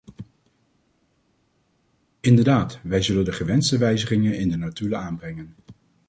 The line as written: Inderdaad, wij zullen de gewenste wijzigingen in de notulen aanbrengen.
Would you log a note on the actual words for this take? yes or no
no